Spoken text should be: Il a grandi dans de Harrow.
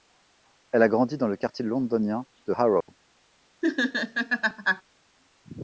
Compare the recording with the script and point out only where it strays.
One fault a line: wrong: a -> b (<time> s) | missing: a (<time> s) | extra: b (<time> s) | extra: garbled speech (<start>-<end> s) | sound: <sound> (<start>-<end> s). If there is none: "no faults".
wrong: Il -> Elle (0.7 s)
extra: le quartier londonien (1.3 s)
sound: dropout (2.8-2.9 s)
sound: laugh (3.6-4.8 s)